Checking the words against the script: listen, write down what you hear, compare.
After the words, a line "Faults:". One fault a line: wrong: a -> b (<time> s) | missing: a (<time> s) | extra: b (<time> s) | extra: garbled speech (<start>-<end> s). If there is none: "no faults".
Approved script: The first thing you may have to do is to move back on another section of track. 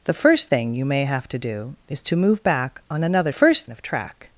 The first thing you may have to do is to move back on another first of track.
Faults:
wrong: section -> first (3.3 s)